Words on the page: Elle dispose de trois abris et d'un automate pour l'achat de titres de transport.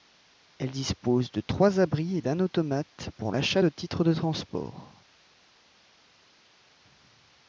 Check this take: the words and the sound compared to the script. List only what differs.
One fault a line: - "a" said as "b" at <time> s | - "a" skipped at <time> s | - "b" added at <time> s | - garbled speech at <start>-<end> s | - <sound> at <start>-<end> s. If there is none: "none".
none